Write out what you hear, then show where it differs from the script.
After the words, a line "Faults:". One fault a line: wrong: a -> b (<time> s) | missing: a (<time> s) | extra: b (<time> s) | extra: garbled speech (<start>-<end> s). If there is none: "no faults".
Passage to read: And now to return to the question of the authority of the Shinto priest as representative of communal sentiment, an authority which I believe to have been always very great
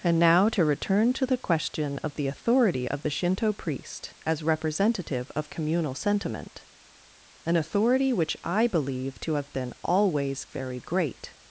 And now to return to the question of the authority of the Shinto priest as representative of communal sentiment, an authority which I believe to have been always very great
Faults:
no faults